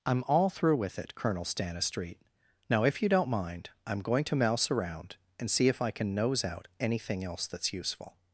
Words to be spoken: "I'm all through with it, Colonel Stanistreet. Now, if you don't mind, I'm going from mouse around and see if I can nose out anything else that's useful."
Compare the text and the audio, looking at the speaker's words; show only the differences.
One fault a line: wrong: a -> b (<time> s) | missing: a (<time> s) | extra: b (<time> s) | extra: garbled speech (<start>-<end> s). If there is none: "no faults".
wrong: from -> to (4.2 s)